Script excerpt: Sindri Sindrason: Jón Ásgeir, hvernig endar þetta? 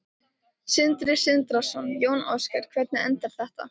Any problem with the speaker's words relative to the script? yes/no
no